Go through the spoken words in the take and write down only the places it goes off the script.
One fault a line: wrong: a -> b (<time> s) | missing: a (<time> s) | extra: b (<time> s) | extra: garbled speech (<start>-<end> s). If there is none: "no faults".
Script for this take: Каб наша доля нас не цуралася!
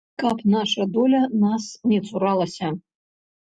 no faults